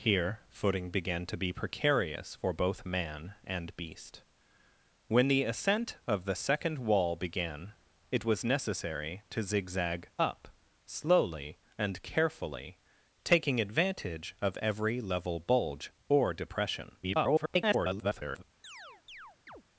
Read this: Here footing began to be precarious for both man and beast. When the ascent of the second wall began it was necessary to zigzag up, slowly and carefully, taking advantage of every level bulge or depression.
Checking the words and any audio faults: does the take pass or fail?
fail